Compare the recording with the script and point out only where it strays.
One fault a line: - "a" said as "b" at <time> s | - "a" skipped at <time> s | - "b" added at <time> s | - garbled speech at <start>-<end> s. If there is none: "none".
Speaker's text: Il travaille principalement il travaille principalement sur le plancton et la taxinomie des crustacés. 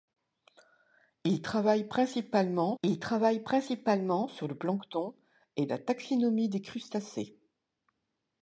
none